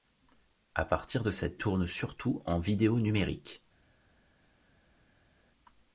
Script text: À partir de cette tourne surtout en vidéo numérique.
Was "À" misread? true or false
false